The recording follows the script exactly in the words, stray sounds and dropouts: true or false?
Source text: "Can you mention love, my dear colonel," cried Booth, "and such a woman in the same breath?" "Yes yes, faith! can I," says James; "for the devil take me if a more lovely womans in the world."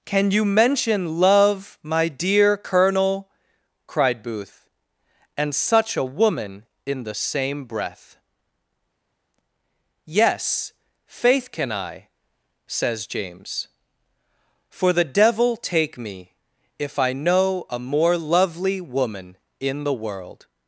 false